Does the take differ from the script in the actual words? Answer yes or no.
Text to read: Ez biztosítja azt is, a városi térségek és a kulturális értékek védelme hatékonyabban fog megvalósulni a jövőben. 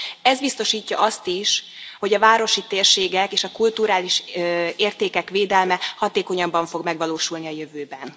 yes